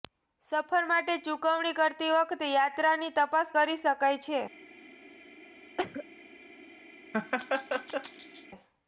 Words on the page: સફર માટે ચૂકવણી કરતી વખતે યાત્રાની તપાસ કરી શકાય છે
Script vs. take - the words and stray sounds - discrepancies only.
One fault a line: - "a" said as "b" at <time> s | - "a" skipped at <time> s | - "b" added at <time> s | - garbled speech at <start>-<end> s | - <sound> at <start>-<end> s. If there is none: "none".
- cough at 5.8-6.0 s
- laugh at 7.1-8.5 s